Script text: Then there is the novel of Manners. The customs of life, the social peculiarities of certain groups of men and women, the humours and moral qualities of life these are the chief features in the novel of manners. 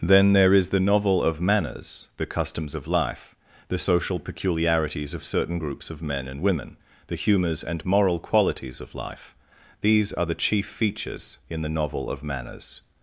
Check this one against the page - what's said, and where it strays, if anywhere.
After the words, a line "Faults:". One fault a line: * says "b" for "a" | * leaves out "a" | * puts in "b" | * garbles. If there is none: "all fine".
Then there is the novel of Manners. The customs of life, the social peculiarities of certain groups of men and women, the humours and moral qualities of life these are the chief features in the novel of manners.
Faults:
all fine